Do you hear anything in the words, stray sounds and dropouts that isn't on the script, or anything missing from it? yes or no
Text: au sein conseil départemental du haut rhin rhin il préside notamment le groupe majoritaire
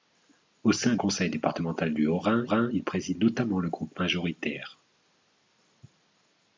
no